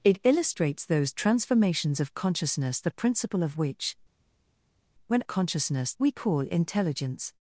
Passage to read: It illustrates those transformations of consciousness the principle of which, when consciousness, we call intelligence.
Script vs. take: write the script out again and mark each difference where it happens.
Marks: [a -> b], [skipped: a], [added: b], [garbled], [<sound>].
It illustrates those transformations of consciousness the principle of which, when consciousness, we call intelligence.